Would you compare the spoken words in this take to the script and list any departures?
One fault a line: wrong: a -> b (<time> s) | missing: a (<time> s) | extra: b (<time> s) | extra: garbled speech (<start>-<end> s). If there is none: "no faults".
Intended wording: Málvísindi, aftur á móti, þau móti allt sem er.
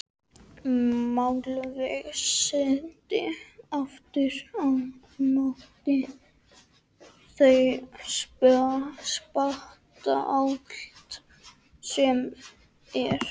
wrong: móti -> spanna (9.1 s)